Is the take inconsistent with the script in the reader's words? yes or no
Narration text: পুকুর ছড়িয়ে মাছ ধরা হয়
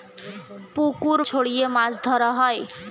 no